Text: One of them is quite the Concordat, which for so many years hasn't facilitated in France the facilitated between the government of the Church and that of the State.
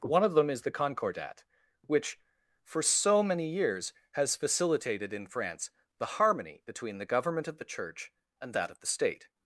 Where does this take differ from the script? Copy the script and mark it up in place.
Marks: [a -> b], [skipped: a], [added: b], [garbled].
One of them is [skipped: quite] the Concordat, which for so many years [hasn't -> has] facilitated in France the [facilitated -> harmony] between the government of the Church and that of the State.